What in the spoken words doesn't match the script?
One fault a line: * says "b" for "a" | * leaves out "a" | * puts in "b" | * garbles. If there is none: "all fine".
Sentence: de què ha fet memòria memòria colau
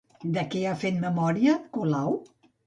* leaves out "memòria"